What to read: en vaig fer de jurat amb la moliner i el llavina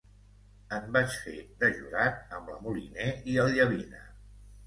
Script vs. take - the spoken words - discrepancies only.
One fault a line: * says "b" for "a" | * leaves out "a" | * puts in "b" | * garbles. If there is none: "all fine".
all fine